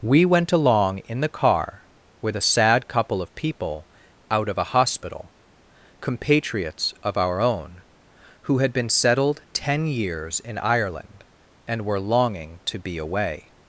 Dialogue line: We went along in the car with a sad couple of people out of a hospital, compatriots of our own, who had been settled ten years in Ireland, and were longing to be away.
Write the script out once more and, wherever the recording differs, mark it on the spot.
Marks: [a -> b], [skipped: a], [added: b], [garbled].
We went along in the car with a sad couple of people out of a hospital, compatriots of our own, who had been settled ten years in Ireland, and were longing to be away.